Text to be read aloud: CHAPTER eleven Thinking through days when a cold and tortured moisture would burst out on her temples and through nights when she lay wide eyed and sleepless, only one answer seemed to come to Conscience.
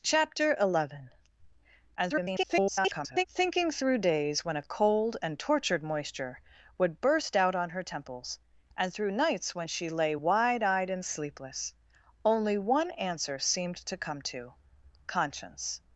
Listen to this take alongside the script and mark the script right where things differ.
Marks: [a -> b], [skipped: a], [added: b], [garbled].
CHAPTER eleven [garbled] Thinking through days when a cold and tortured moisture would burst out on her temples and through nights when she lay wide eyed and sleepless, only one answer seemed to come to Conscience.